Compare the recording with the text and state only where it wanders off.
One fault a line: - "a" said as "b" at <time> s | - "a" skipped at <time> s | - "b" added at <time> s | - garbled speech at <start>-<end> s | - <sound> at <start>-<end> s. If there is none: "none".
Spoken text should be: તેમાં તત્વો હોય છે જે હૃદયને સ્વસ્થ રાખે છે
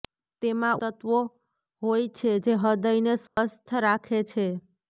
- dropout at 3.3-3.4 s